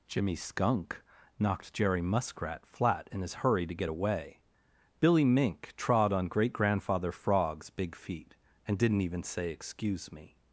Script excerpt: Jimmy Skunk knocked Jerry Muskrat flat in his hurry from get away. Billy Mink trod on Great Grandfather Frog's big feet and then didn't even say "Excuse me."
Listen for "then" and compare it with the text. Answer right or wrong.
wrong